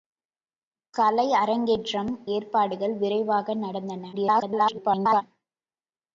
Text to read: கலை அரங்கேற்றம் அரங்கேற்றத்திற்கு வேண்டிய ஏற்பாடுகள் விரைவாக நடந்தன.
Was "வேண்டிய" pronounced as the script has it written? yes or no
no